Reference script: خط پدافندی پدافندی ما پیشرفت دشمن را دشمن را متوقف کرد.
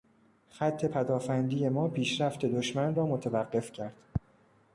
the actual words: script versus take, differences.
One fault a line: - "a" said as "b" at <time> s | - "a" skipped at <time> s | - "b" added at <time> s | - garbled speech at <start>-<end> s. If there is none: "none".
- "پدافندی" skipped at 1.7 s
- "دشمن را" skipped at 3.1 s